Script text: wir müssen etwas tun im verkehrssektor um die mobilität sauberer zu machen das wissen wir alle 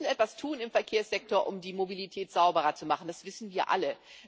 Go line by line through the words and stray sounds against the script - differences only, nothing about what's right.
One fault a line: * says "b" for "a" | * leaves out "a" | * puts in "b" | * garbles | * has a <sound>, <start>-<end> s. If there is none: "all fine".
all fine